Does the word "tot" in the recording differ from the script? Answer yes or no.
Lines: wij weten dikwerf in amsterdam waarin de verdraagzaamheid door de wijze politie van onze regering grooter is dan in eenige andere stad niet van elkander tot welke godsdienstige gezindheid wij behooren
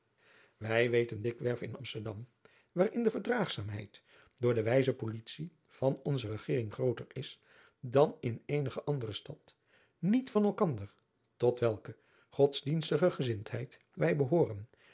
no